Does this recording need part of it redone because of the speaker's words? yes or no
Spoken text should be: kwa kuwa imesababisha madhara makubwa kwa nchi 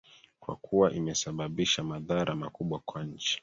no